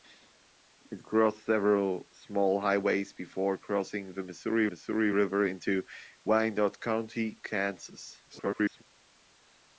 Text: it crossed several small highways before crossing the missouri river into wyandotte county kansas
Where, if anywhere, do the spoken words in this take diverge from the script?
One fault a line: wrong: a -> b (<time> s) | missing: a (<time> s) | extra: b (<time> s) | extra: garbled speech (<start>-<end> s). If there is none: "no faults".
extra: missouri (4.7 s)
extra: garbled speech (8.3-8.8 s)